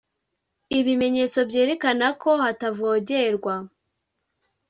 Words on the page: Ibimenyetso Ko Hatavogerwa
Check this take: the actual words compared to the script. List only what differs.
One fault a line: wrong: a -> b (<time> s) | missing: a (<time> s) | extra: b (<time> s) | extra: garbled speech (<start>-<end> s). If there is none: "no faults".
extra: Byerekana (1.5 s)